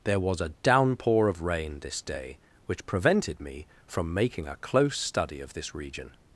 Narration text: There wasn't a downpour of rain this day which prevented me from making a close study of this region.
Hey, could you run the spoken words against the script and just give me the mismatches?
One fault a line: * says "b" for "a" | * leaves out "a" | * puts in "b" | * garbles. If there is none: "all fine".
* says "was" for "wasn't"